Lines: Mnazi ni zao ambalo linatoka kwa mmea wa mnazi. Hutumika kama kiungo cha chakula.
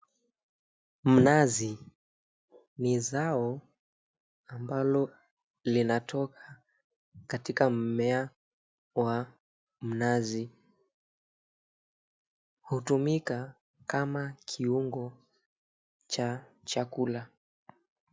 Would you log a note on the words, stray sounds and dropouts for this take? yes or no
yes